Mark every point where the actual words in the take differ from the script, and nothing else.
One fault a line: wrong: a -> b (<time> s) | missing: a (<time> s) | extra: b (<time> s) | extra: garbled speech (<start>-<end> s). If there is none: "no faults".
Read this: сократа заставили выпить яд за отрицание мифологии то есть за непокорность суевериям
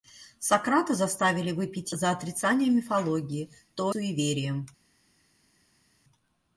missing: яд (1.9 s)
missing: есть за непокорность (3.9 s)